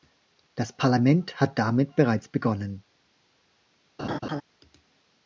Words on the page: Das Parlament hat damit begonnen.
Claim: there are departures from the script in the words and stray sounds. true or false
true